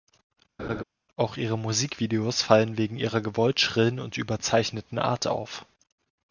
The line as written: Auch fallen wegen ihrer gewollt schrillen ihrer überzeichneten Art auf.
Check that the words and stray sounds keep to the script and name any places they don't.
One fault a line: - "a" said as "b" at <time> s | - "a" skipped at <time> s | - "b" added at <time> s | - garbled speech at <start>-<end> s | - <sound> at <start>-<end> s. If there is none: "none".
- laugh at 0.6-0.8 s
- "ihre Musikvideos" added at 1.4 s
- "ihrer" said as "und" at 4.0 s